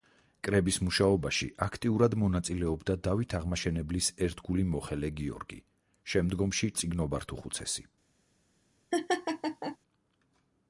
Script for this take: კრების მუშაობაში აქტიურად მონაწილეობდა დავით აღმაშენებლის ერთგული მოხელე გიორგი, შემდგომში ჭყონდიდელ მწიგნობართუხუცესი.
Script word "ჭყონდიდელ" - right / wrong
wrong